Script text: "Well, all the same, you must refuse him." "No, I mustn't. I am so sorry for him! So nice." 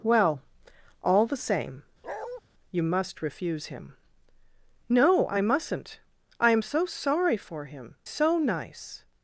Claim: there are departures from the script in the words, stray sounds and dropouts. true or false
true